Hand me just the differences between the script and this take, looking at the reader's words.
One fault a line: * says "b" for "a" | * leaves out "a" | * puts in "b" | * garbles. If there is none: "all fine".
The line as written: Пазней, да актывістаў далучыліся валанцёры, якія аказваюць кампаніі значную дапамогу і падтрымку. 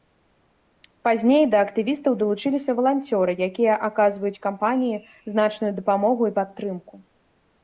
all fine